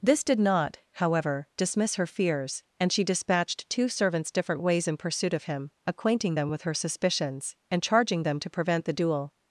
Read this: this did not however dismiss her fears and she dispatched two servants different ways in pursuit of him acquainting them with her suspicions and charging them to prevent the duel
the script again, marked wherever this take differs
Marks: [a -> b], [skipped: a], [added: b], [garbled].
this did not however dismiss her fears and she dispatched two servants different ways in pursuit of him acquainting them with her suspicions and charging them to prevent the duel